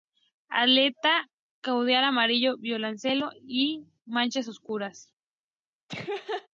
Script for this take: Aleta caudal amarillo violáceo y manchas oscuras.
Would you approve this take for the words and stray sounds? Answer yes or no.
no